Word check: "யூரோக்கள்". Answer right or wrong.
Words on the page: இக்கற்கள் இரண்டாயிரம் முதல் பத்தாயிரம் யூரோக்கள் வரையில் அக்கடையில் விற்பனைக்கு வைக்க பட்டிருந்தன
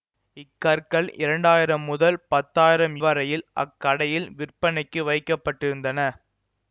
wrong